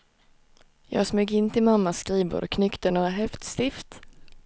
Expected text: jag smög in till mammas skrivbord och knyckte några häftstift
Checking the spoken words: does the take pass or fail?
pass